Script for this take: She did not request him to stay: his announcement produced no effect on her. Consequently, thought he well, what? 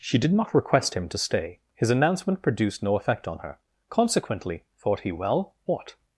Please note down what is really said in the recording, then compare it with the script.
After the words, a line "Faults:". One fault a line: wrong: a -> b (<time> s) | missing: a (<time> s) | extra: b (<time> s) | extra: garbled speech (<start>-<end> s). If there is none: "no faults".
She did not request him to stay: his announcement produced no effect on her. Consequently, thought he well, what?
Faults:
no faults